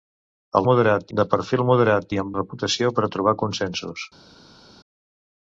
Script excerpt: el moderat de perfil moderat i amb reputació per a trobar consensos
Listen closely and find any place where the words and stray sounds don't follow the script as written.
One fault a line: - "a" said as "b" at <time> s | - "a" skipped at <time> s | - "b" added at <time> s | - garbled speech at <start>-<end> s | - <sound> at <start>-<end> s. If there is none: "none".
none